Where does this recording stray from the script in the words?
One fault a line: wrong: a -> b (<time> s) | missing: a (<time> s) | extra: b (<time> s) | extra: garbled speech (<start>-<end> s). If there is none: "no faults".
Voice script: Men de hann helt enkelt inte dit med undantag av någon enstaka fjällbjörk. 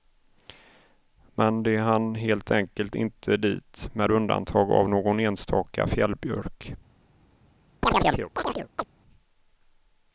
no faults